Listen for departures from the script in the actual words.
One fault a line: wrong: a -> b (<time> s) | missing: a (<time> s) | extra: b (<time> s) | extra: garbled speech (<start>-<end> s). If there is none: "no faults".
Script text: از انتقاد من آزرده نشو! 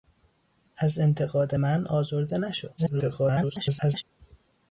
extra: garbled speech (2.8-4.0 s)